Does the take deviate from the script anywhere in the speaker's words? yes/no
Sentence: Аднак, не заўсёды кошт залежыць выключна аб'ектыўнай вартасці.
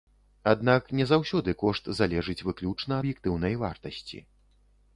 no